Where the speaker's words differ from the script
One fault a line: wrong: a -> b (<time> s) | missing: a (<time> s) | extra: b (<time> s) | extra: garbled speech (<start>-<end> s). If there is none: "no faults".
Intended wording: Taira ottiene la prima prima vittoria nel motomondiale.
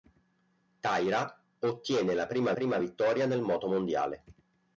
no faults